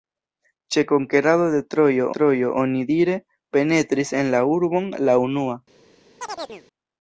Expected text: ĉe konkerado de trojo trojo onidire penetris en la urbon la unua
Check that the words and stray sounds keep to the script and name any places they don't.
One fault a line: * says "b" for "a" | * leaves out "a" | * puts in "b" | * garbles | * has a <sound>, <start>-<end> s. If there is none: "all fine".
* has a chirp, 6.2-6.6 s